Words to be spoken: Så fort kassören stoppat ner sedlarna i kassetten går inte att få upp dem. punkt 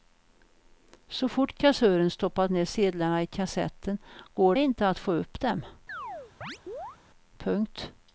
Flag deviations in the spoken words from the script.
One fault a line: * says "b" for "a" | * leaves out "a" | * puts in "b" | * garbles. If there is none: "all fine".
all fine